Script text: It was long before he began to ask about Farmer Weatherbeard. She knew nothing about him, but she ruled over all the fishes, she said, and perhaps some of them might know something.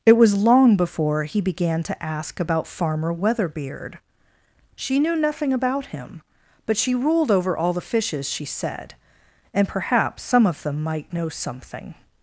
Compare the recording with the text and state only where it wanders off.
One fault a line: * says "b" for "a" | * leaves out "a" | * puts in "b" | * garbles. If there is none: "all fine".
all fine